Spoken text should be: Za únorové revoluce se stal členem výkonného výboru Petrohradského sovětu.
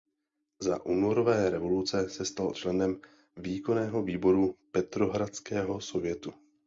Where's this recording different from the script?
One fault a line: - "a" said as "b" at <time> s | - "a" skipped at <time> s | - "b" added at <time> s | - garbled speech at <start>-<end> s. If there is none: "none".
none